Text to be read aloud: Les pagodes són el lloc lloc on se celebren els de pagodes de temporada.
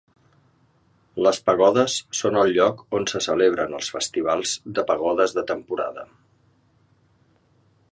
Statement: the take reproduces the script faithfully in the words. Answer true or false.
false